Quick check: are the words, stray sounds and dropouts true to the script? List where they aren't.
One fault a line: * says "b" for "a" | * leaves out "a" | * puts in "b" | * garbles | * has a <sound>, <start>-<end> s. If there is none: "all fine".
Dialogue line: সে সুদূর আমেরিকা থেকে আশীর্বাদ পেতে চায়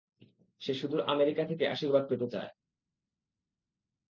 all fine